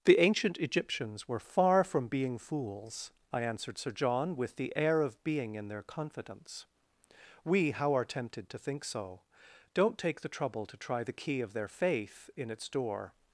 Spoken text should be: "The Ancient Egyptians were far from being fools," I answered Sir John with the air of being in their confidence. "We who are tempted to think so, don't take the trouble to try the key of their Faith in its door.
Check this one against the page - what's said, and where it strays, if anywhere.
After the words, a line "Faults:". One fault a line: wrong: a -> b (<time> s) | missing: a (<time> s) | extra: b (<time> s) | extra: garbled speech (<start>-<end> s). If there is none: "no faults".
"The Ancient Egyptians were far from being fools," I answered Sir John with the air of being in their confidence. "We how are tempted to think so, don't take the trouble to try the key of their Faith in its door.
Faults:
wrong: who -> how (7.7 s)